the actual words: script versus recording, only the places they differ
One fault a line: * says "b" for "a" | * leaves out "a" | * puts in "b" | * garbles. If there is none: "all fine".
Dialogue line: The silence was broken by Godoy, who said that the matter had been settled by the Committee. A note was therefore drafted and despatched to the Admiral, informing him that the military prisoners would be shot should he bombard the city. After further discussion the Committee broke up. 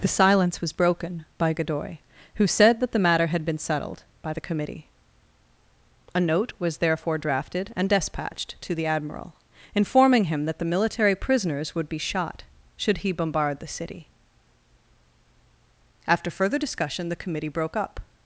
all fine